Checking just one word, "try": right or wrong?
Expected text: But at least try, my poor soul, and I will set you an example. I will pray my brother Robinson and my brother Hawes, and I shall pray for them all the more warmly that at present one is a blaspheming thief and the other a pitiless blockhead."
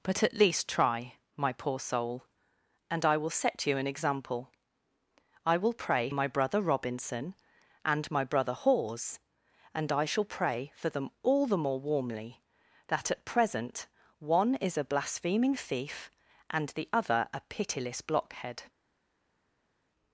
right